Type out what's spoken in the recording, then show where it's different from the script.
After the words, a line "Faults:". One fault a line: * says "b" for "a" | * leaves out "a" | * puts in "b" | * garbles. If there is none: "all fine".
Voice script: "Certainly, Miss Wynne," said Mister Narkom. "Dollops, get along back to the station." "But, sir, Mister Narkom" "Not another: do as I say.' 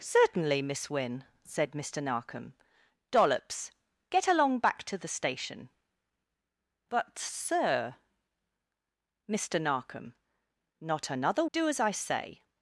"Certainly, Miss Wynne," said Mister Narkom. "Dollops, get along back to the station." "But, sir, Mister Narkom" "Not another: do as I say.'
Faults:
all fine